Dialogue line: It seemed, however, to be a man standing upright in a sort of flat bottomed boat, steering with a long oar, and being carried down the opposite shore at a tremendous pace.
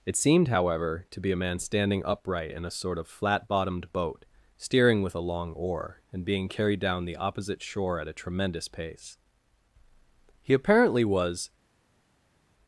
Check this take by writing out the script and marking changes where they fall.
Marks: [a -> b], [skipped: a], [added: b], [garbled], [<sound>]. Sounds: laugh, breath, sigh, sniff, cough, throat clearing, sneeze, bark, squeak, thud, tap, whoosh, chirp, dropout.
It seemed, however, to be a man standing upright in a sort of flat bottomed boat, steering with a long oar, and being carried down the opposite shore at a tremendous pace. [added: He apparently was]